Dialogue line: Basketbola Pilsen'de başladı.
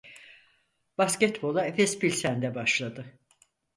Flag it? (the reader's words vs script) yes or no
yes